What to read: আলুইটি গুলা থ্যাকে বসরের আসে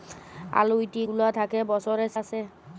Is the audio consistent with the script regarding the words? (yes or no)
yes